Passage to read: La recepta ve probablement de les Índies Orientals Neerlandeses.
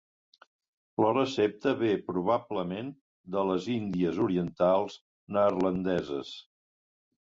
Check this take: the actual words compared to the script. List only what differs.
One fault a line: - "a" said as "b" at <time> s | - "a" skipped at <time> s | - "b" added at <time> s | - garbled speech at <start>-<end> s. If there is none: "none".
none